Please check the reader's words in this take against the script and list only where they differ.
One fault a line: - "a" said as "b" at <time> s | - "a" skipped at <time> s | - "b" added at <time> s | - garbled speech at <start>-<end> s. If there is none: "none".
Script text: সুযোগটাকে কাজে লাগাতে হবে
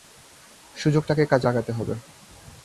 none